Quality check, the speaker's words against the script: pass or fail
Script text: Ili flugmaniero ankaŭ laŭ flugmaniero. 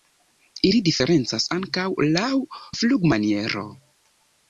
fail